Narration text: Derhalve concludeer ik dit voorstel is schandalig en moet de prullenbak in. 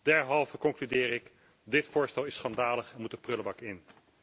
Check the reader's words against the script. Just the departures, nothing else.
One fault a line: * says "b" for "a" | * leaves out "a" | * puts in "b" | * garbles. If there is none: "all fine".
all fine